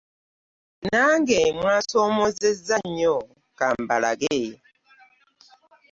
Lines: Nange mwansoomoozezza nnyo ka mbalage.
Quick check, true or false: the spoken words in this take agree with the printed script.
true